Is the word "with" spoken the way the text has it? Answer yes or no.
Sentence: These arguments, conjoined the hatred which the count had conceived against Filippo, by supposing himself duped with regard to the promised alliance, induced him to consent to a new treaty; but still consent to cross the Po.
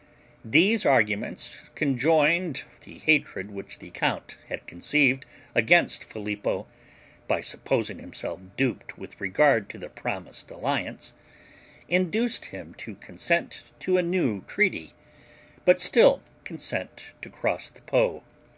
yes